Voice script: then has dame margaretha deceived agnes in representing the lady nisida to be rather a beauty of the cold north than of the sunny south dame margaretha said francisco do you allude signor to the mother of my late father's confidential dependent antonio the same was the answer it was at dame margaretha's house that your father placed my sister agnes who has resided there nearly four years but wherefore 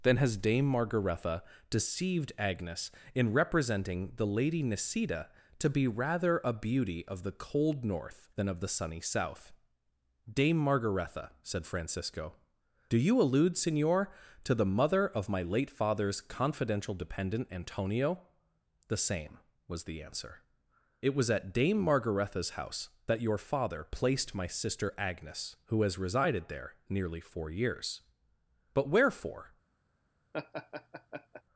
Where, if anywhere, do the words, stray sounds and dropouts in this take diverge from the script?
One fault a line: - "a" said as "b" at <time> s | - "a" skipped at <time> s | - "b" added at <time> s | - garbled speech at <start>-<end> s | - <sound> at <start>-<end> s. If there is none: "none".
- laugh at 30.3-31.4 s